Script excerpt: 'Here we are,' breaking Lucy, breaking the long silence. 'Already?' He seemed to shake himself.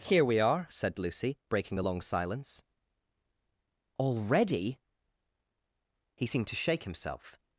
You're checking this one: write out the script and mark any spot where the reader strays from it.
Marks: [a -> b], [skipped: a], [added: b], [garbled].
'Here we are,' [breaking -> said] Lucy, breaking the long silence. 'Already?' He seemed to shake himself.